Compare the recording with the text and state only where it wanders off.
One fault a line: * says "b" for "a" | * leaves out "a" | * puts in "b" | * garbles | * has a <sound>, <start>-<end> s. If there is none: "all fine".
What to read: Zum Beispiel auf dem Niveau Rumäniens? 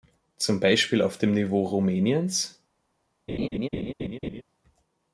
* has a laugh, 3.3-4.4 s